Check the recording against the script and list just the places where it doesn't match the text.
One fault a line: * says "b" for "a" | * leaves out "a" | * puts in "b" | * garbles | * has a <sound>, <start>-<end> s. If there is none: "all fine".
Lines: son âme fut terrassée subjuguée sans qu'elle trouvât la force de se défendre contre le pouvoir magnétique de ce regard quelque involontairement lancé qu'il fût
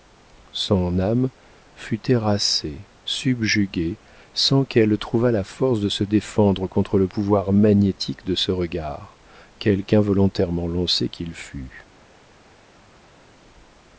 all fine